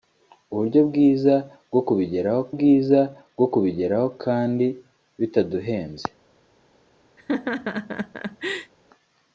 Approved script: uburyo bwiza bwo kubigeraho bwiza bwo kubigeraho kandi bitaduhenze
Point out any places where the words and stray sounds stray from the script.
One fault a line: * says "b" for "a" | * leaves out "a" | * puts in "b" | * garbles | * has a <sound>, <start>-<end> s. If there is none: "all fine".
* has a laugh, 7.2-8.7 s